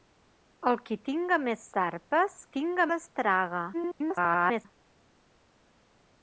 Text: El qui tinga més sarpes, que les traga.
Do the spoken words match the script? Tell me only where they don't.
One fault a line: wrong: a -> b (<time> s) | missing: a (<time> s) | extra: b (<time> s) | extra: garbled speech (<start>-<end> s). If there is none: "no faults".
wrong: que -> tinga (2.6 s)
extra: garbled speech (3.7-4.7 s)